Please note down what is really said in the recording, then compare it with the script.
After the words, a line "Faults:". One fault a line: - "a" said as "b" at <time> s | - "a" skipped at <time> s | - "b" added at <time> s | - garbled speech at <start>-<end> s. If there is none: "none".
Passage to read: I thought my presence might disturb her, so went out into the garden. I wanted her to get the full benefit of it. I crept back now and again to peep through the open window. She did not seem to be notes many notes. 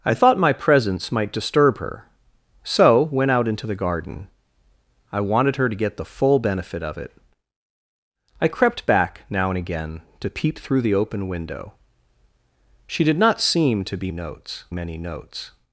I thought my presence might disturb her, so went out into the garden. I wanted her to get the full benefit of it. I crept back now and again to peep through the open window. She did not seem to be notes many notes.
Faults:
none